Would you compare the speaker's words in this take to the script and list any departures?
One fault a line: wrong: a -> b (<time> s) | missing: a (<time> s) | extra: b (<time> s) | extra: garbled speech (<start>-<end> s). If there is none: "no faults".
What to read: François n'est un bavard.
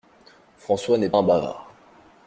no faults